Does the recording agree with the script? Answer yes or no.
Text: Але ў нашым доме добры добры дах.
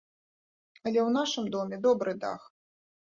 no